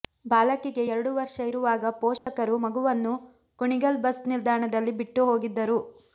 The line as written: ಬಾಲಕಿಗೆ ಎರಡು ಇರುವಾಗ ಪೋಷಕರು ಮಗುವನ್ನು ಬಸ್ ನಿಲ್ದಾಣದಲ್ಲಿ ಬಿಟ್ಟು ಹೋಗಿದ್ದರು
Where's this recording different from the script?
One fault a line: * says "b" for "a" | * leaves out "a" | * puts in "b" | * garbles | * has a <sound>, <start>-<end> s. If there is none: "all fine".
* puts in "ವರ್ಷ"
* has a dropout, 2.2-2.3 s
* puts in "ಕುಣಿಗಲ್"